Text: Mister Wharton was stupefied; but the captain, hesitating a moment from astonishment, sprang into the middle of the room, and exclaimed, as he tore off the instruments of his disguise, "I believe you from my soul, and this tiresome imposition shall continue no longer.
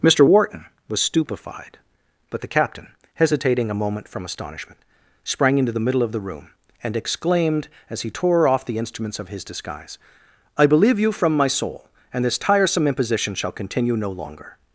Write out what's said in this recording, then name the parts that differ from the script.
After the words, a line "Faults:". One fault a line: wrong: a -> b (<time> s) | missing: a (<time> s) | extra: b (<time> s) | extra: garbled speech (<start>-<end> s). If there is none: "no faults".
Mister Wharton was stupefied; but the captain, hesitating a moment from astonishment, sprang into the middle of the room, and exclaimed, as he tore off the instruments of his disguise, "I believe you from my soul, and this tiresome imposition shall continue no longer.
Faults:
no faults